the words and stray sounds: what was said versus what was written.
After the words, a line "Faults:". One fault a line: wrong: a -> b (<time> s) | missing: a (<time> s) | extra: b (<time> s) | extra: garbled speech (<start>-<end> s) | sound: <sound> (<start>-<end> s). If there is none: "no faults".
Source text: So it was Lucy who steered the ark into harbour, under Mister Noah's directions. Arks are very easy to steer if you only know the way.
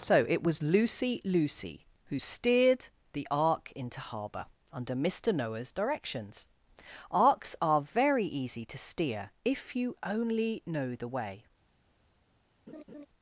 So it was Lucy Lucy who steered the ark into harbour, under Mister Noah's directions. Arks are very easy to steer if you only know the way.
Faults:
extra: Lucy (1.2 s)
sound: laugh (12.7-13.1 s)